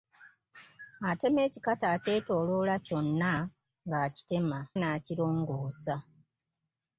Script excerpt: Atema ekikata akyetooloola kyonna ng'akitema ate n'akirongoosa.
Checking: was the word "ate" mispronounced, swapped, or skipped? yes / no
yes